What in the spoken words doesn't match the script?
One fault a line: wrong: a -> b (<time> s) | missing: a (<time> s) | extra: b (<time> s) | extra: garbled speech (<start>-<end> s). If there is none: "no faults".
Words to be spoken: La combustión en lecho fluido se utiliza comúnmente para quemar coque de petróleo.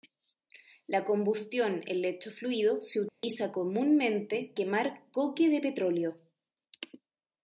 missing: para (4.5 s)